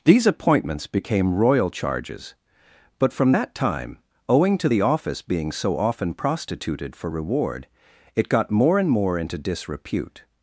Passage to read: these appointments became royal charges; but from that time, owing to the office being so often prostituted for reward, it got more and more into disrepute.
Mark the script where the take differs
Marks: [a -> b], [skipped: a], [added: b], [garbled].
these appointments became royal charges; but from that time, owing to the office being so often prostituted for reward, it got more and more into disrepute.